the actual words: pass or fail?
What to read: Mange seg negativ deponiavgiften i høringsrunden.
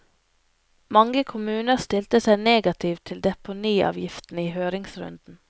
fail